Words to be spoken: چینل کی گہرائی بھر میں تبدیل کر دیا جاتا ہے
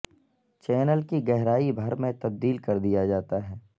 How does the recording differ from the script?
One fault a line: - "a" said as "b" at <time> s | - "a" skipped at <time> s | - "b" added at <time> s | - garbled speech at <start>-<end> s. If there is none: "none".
none